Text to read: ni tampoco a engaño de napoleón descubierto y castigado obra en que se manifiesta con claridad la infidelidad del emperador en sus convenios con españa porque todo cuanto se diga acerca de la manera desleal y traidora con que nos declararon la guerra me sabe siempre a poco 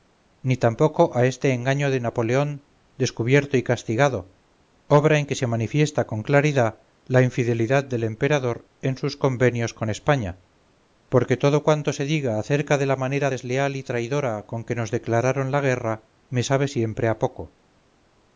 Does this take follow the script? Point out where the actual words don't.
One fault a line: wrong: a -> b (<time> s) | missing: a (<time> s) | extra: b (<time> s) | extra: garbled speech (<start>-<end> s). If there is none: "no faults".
extra: este (1.3 s)